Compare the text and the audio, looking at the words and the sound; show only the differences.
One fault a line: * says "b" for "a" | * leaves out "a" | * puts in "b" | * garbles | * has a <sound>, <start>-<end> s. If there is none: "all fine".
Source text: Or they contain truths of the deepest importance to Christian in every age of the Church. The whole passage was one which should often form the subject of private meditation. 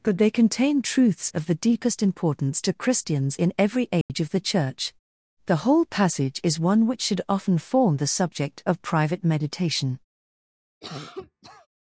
* says "But" for "Or"
* says "Christians" for "Christian"
* has a dropout, 4.0-4.1 s
* says "is" for "was"
* has a cough, 10.8-11.7 s